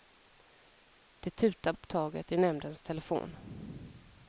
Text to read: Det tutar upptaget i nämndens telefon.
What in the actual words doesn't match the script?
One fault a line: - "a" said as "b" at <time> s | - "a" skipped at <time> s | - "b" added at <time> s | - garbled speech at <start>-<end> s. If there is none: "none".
none